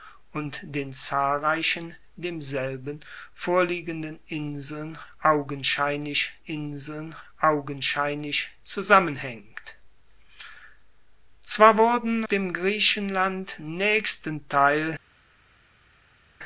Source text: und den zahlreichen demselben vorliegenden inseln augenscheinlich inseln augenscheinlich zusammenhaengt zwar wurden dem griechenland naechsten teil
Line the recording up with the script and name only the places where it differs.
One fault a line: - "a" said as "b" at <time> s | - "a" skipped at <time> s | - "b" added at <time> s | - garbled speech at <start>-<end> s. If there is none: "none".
none